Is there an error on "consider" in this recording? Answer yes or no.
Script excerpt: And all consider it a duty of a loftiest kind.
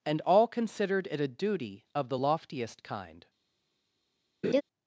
yes